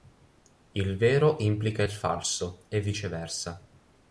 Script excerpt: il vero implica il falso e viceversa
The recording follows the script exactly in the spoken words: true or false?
true